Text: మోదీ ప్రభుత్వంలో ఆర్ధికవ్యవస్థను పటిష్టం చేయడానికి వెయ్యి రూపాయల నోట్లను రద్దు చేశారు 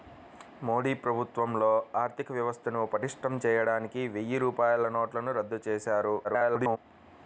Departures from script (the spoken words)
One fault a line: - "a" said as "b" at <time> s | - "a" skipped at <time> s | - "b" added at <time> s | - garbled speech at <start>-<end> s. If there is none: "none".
- garbled speech at 6.2-6.8 s